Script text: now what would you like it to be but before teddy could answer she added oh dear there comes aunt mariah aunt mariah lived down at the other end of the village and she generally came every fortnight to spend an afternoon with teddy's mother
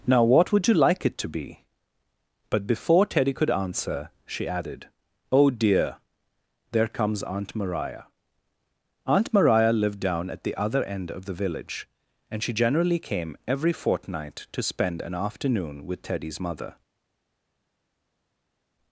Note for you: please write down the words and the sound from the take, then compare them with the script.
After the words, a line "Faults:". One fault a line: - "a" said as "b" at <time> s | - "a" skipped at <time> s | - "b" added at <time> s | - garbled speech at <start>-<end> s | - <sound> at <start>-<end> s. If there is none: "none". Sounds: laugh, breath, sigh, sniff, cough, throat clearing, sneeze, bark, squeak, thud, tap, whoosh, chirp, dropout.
now what would you like it to be but before teddy could answer she added oh dear there comes aunt mariah aunt mariah lived down at the other end of the village and she generally came every fortnight to spend an afternoon with teddy's mother
Faults:
none